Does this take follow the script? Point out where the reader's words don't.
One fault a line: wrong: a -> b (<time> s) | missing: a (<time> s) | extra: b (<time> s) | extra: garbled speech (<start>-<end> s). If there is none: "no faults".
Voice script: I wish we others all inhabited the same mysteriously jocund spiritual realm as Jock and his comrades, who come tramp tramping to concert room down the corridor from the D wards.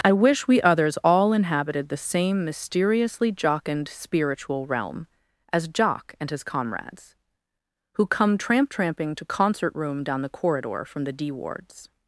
no faults